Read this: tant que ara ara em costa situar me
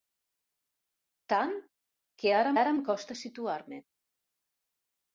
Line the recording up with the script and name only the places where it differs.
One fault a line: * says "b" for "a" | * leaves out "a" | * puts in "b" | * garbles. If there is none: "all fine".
all fine